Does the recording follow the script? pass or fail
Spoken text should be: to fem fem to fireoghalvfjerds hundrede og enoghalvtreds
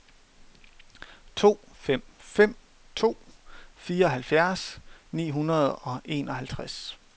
fail